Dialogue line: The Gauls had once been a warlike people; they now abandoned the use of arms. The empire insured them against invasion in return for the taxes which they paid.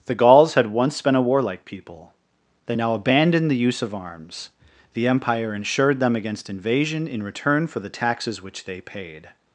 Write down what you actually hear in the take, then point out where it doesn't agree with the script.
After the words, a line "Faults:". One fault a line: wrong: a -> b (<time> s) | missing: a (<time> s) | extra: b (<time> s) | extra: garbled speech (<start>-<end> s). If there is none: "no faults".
The Gauls had once been a warlike people; they now abandoned the use of arms. The empire insured them against invasion in return for the taxes which they paid.
Faults:
no faults